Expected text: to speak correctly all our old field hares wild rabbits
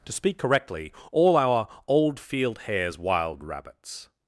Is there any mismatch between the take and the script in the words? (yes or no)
no